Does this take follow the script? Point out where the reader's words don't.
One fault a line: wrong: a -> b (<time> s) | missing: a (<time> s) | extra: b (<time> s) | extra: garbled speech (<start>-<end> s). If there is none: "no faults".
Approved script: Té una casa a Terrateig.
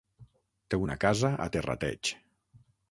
no faults